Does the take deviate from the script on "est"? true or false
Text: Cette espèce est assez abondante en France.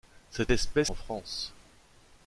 true